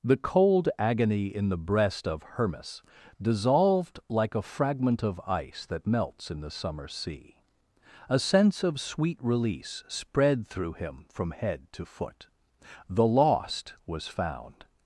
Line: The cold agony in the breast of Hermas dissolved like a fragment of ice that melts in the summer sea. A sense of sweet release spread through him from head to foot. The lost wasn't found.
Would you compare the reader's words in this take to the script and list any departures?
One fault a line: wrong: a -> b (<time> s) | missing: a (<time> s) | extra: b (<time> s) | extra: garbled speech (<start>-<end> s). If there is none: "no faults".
wrong: wasn't -> was (13.8 s)